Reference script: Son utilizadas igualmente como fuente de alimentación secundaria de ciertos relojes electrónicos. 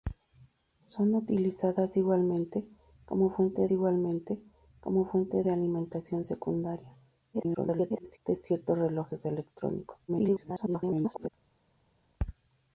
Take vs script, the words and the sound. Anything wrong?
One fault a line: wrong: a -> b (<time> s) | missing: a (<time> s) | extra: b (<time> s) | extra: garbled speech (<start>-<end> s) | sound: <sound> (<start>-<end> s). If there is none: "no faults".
extra: igualmente como fuente (3.7 s)
extra: garbled speech (7.3-8.2 s)
extra: garbled speech (10.1-11.3 s)